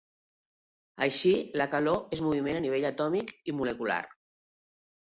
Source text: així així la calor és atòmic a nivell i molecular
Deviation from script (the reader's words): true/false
true